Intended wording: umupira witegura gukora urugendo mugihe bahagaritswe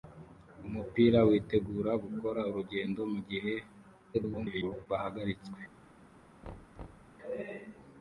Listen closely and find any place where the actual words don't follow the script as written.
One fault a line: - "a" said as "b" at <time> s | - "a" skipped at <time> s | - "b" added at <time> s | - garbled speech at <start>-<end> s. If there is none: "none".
- garbled speech at 4.1-4.9 s